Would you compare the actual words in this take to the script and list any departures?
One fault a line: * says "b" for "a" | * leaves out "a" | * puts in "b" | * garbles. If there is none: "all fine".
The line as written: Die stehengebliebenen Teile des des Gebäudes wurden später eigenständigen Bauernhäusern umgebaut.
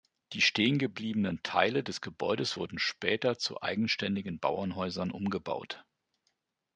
* leaves out "des"
* puts in "zu"